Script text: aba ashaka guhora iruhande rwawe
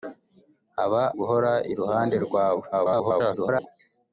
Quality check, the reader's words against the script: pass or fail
fail